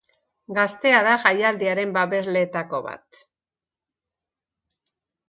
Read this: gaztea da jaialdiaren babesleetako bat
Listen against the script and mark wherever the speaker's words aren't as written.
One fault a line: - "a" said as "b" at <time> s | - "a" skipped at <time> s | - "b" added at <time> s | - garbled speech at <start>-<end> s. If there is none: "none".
none